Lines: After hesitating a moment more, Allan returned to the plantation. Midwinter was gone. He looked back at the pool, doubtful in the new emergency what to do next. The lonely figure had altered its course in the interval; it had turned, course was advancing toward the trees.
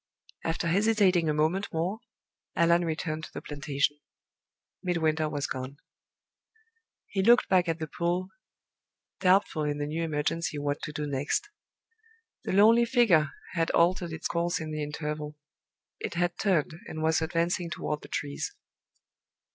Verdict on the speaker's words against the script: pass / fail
fail